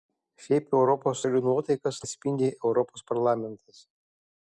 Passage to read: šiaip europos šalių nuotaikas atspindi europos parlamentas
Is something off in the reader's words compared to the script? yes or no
no